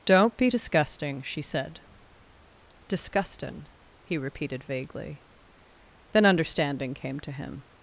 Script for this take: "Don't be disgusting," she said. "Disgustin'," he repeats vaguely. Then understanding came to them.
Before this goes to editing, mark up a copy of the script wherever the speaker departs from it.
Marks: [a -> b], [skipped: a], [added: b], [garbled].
"Don't be disgusting," she said. "Disgustin'," he [repeats -> repeated] vaguely. Then understanding came to [them. -> him]